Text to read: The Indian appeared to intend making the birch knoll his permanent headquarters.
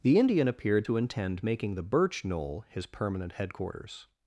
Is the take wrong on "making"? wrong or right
right